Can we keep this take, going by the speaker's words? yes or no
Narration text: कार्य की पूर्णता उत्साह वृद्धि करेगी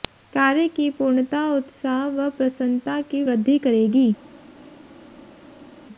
no